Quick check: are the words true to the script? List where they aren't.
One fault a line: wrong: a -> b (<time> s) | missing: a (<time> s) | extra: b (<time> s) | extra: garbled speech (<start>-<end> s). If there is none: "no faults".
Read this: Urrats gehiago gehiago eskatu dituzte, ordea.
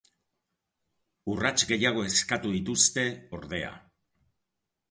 missing: gehiago (2.0 s)